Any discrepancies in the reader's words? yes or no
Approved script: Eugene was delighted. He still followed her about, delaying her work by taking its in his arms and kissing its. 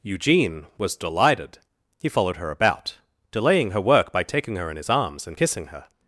yes